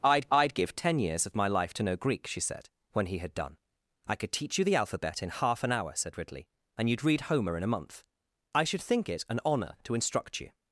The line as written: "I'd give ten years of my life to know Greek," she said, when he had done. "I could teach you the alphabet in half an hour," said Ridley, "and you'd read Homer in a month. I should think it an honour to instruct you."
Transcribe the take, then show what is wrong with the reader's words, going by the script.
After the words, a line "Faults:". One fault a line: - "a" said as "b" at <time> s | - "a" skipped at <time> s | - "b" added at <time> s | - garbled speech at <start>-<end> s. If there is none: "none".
"I'd I'd give ten years of my life to know Greek," she said, when he had done. "I could teach you the alphabet in half an hour," said Ridley, "and you'd read Homer in a month. I should think it an honour to instruct you."
Faults:
- "I'd" added at 0.3 s